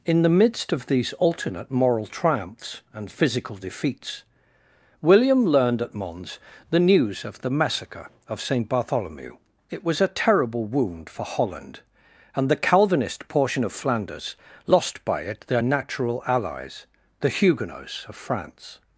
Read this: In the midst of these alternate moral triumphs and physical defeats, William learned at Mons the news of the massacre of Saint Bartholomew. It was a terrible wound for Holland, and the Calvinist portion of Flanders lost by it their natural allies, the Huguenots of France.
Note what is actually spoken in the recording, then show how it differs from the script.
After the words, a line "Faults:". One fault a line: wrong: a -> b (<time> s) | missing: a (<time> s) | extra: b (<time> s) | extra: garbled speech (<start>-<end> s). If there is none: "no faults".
In the midst of these alternate moral triumphs and physical defeats, William learned at Mons the news of the massacre of Saint Bartholomew. It was a terrible wound for Holland, and the Calvinist portion of Flanders lost by it their natural allies, the Huguenots of France.
Faults:
no faults